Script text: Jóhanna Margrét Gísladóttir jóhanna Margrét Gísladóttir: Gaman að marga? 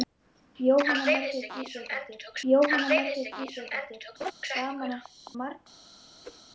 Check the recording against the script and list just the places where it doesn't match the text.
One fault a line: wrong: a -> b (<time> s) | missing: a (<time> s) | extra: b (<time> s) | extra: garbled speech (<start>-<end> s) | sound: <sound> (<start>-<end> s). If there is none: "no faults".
sound: laugh (4.2-4.3 s)
sound: whoosh (6.2-6.4 s)